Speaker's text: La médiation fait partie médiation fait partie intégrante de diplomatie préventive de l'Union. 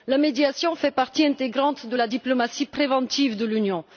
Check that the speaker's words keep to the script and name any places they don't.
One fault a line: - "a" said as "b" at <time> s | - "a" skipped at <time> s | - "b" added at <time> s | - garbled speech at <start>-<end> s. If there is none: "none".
- "médiation fait partie" skipped at 1.2 s
- "la" added at 1.9 s